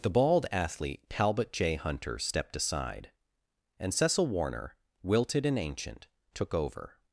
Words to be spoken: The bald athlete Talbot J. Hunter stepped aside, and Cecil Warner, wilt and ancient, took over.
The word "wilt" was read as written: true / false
false